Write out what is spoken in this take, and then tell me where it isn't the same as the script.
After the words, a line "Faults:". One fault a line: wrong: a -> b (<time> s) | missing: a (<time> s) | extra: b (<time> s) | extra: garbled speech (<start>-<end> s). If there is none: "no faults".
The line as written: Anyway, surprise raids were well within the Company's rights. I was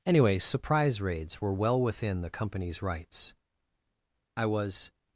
Anyway, surprise raids were well within the Company's rights. I was
Faults:
no faults